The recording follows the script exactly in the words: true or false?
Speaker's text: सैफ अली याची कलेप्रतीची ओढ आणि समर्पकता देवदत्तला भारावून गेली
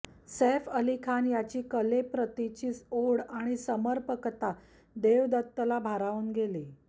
false